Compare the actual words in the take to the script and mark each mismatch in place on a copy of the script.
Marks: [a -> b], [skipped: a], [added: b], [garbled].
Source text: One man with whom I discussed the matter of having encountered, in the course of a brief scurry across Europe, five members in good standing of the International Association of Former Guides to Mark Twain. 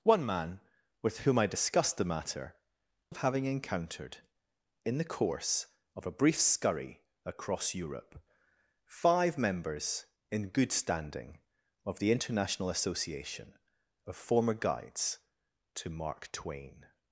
One man with whom I discussed the matter of having encountered, in the course of a brief scurry across Europe, five members in good standing of the International Association of Former Guides to Mark Twain.